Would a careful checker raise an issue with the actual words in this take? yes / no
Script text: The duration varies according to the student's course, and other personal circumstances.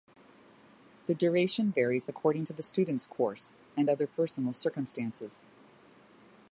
no